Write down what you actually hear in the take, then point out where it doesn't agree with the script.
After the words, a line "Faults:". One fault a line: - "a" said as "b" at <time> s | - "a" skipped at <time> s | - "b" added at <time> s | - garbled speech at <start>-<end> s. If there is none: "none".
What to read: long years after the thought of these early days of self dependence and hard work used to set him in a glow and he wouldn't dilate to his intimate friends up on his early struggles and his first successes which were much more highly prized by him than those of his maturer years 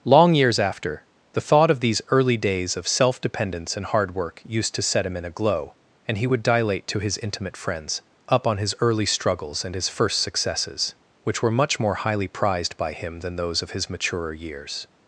long years after the thought of these early days of self dependence and hard work used to set him in a glow and he would dilate to his intimate friends up on his early struggles and his first successes which were much more highly prized by him than those of his maturer years
Faults:
- "wouldn't" said as "would" at 6.2 s